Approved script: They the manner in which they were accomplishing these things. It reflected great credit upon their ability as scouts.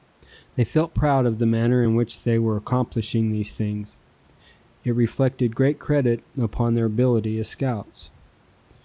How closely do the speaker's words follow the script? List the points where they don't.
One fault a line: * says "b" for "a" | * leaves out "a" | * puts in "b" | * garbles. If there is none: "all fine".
* puts in "felt proud of"